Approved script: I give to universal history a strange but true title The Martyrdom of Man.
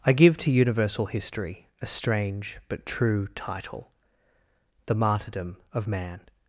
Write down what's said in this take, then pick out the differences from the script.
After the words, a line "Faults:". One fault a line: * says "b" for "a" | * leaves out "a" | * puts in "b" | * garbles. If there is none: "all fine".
I give to universal history a strange but true title The Martyrdom of Man.
Faults:
all fine